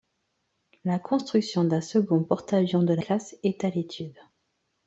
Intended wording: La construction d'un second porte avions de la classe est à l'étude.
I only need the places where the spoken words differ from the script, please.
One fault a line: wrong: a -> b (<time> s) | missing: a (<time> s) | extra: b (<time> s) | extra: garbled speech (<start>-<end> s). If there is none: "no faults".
no faults